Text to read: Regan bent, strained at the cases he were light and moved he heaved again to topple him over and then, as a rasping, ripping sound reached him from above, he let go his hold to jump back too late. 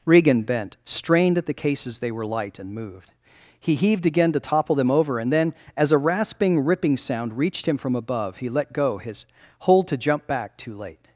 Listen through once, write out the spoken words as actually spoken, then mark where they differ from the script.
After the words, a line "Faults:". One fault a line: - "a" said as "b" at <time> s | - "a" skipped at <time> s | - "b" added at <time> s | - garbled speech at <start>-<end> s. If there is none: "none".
Regan bent, strained at the cases they were light and moved he heaved again to topple them over and then, as a rasping, ripping sound reached him from above, he let go his hold to jump back too late.
Faults:
- "he" said as "they" at 2.0 s
- "him" said as "them" at 4.7 s